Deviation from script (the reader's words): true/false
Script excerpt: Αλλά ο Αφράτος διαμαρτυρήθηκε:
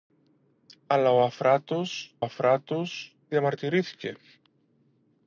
true